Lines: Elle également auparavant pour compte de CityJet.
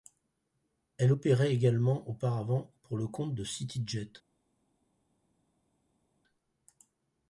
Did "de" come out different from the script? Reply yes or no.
no